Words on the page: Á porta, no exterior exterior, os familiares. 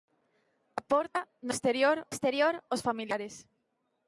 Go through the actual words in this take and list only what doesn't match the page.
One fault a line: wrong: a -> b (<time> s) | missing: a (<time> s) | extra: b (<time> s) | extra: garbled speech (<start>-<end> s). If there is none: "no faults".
no faults